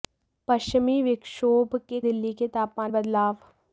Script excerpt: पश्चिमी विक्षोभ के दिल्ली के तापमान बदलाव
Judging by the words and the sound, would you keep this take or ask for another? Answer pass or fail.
pass